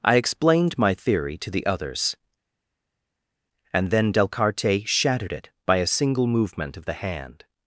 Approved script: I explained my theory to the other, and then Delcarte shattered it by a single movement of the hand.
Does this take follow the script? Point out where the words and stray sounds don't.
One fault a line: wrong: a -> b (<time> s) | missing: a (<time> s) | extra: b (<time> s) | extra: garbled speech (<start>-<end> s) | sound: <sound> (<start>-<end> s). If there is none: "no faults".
wrong: other -> others (1.7 s)